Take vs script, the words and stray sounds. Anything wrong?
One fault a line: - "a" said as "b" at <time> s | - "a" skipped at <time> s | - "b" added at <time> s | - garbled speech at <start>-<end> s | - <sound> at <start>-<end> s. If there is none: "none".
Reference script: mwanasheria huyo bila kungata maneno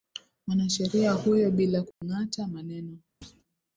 - dropout at 1.9-2.0 s
- thud at 3.2-3.4 s